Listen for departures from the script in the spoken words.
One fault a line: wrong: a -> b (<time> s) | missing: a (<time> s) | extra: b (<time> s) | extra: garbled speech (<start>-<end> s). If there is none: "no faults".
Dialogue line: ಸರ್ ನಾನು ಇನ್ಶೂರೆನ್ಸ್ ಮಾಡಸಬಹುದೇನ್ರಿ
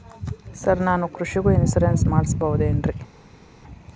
extra: ಕೃಷಿಗೂ (1.1 s)